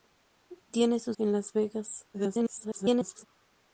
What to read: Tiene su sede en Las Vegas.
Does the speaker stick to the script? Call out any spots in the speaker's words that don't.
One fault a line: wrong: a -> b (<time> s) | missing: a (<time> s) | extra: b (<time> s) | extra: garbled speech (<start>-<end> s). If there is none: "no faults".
missing: sede (1.1 s)
extra: garbled speech (2.1-3.2 s)